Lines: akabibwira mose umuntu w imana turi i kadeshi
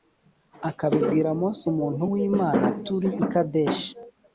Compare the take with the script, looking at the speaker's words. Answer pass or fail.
pass